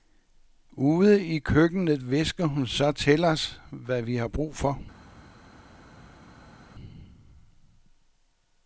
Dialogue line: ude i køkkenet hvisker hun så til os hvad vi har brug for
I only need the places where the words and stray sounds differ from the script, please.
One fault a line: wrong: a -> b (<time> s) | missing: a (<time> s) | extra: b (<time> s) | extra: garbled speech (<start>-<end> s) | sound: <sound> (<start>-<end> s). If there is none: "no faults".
no faults